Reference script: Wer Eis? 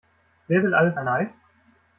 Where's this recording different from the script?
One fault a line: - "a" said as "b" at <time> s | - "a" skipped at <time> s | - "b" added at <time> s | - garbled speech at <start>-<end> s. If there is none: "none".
- "will alles ein" added at 0.6 s